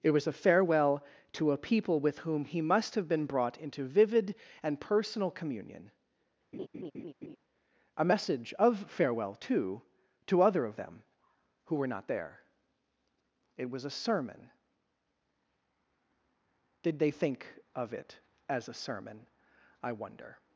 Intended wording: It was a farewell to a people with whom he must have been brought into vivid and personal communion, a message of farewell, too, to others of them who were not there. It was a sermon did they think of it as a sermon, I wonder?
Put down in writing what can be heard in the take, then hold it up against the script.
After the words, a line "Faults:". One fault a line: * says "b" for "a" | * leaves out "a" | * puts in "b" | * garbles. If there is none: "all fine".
It was a farewell to a people with whom he must have been brought into vivid and personal communion, a message of farewell, too, to other of them who were not there. It was a sermon did they think of it as a sermon, I wonder?
Faults:
* says "other" for "others"